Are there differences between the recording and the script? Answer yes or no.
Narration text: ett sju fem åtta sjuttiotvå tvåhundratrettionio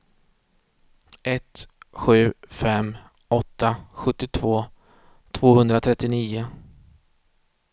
no